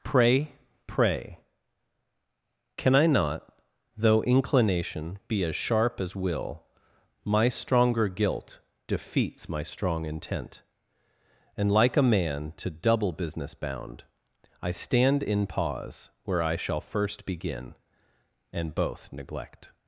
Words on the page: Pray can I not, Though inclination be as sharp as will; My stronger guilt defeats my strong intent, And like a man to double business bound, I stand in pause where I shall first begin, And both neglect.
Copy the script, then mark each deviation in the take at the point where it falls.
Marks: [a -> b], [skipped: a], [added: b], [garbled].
Pray [added: pray] can I not, Though inclination be as sharp as will; My stronger guilt defeats my strong intent, And like a man to double business bound, I stand in pause where I shall first begin, And both neglect.